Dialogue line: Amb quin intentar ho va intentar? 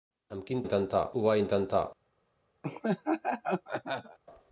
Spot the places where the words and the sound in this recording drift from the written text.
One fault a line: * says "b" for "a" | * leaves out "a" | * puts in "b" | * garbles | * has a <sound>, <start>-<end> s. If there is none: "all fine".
* has a laugh, 2.6-4.2 s